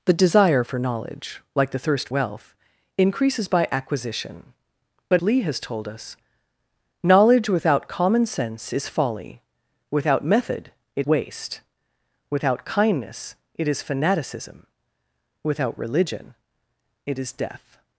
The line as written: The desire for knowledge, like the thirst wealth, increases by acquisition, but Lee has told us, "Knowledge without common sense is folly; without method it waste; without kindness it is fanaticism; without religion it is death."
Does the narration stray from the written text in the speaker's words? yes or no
no